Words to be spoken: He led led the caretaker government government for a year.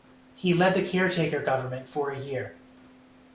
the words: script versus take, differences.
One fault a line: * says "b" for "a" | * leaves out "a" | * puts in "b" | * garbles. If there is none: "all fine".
* leaves out "led"
* leaves out "government"